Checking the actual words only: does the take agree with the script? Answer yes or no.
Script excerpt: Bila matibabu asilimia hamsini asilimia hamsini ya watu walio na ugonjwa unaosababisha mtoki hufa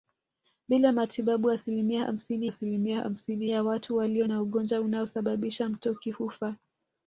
yes